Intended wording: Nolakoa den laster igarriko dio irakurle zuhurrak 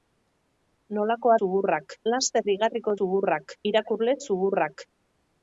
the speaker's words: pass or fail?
fail